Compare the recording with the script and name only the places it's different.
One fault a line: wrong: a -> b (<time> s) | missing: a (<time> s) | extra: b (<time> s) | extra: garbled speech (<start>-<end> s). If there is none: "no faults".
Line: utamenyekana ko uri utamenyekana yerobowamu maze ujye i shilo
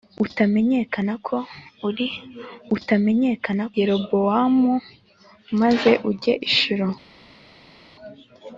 no faults